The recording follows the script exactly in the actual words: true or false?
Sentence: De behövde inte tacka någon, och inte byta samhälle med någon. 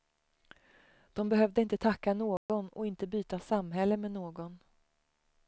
true